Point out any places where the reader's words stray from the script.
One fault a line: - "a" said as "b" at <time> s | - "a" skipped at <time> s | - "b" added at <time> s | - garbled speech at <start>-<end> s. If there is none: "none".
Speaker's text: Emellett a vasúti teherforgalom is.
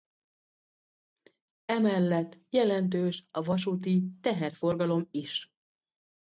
- "jelentős" added at 2.5 s